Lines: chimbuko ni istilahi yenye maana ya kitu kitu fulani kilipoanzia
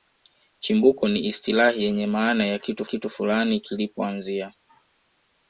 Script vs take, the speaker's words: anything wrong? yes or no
no